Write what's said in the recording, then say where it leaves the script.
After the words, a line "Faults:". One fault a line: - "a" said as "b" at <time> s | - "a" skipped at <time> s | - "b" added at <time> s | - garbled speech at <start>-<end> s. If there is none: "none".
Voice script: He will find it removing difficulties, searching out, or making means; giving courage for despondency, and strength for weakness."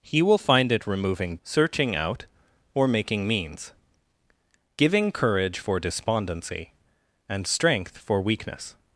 He will find it removing searching out, or making means; giving courage for despondency, and strength for weakness."
Faults:
- "difficulties" skipped at 1.4 s